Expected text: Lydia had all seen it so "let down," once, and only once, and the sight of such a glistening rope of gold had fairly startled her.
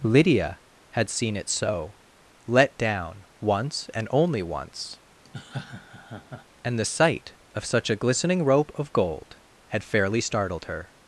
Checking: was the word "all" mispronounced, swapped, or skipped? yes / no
yes